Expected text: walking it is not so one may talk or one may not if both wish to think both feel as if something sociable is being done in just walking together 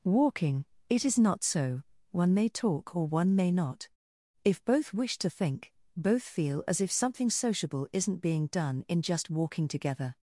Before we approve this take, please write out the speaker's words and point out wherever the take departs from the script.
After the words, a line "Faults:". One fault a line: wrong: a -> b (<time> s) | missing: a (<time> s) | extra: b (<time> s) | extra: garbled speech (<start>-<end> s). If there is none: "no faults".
walking it is not so one may talk or one may not if both wish to think both feel as if something sociable isn't being done in just walking together
Faults:
wrong: is -> isn't (7.9 s)